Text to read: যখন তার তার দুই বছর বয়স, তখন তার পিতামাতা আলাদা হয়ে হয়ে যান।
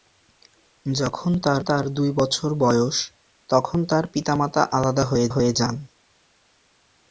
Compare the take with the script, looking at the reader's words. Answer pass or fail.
pass